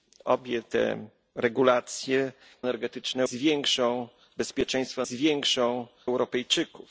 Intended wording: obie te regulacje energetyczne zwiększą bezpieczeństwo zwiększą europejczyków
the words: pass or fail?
pass